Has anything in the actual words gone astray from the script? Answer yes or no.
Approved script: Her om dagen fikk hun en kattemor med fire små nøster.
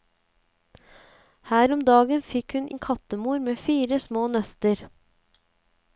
no